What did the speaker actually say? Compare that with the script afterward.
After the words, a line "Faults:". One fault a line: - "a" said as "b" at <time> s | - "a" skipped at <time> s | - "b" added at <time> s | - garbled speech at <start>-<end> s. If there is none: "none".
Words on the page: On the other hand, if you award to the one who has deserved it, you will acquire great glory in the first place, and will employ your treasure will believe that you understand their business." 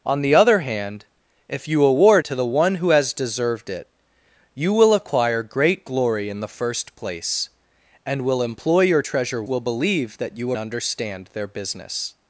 On the other hand, if you award to the one who has deserved it, you will acquire great glory in the first place, and will employ your treasure will believe that you understand their business."
Faults:
none